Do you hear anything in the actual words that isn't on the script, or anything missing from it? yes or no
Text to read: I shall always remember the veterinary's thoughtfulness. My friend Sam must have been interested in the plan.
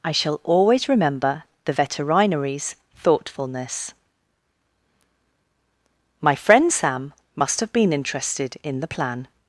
no